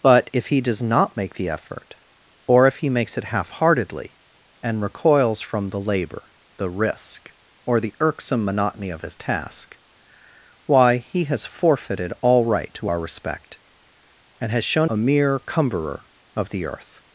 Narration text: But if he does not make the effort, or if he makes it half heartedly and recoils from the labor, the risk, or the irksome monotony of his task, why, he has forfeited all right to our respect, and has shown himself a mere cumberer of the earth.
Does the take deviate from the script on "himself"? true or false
true